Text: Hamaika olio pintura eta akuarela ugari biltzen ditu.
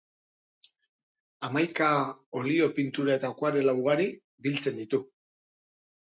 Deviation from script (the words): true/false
false